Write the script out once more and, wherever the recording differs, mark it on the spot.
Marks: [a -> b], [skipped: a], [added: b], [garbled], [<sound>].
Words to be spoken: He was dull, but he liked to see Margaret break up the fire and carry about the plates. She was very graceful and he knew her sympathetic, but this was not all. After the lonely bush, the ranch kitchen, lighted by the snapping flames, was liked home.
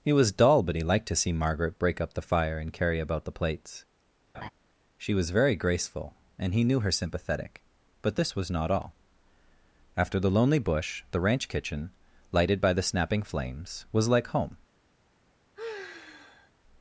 He was dull, but he liked to see Margaret break up the fire and carry about the plates. [laugh] She was very graceful and he knew her sympathetic, but this was not all. After the lonely bush, the ranch kitchen, lighted by the snapping flames, was [liked -> like] home. [sigh]